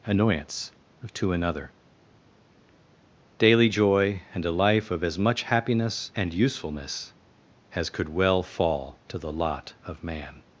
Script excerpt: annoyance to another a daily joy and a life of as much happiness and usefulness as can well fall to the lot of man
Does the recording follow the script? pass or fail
fail